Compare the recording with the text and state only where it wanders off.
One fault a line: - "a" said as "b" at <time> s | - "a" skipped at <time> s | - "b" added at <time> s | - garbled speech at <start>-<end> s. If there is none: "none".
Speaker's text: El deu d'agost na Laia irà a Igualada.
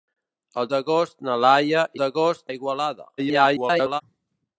- "deu" skipped at 0.7 s
- "irà" said as "d'agost" at 2.0 s
- garbled speech at 3.2-4.0 s